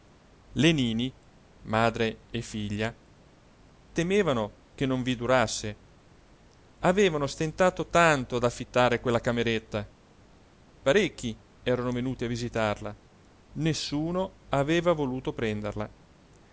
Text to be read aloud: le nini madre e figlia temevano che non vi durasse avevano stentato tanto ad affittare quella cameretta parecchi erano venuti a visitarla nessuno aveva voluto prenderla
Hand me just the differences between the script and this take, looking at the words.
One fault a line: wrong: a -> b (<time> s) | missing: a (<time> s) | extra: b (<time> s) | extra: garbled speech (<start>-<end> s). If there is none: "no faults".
no faults